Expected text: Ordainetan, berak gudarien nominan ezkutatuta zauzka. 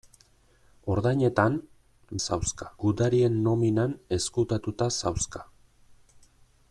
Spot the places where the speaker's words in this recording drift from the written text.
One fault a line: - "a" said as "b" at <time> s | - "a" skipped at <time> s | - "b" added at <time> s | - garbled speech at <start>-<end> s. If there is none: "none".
- "berak" said as "zauzka" at 2.2 s